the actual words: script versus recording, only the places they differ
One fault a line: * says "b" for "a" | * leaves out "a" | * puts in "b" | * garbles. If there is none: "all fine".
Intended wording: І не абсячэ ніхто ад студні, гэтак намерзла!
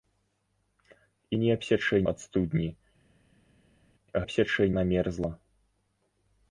* leaves out "ніхто"
* says "абсячэ" for "гэтак"